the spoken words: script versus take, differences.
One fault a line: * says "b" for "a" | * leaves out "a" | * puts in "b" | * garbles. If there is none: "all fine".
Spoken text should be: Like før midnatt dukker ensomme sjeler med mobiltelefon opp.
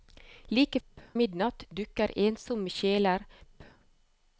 * says "opp" for "før"
* leaves out "med mobiltelefon"